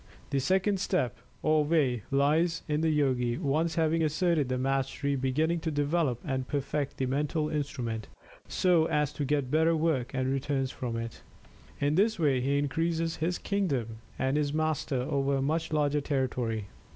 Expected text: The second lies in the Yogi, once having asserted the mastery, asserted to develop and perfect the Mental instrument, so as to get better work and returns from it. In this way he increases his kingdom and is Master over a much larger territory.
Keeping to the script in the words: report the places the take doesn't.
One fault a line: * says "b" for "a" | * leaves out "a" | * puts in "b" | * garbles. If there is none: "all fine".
* puts in "step or way"
* says "beginning" for "asserted"